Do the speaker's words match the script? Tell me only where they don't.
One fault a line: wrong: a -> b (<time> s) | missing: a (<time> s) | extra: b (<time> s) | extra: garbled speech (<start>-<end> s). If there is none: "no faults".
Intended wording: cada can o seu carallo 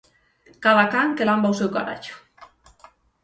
extra: que lamba (1.2 s)